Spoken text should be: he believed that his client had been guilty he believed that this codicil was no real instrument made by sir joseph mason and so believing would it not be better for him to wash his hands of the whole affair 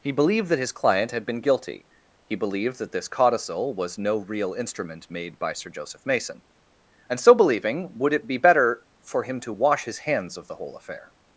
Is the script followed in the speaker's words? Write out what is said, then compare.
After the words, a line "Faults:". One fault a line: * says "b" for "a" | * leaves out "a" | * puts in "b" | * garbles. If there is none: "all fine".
he believed that his client had been guilty he believed that this codicil was no real instrument made by sir joseph mason and so believing would it be better for him to wash his hands of the whole affair
Faults:
* leaves out "not"